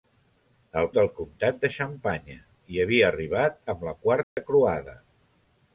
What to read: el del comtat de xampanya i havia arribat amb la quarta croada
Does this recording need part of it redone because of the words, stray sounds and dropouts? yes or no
yes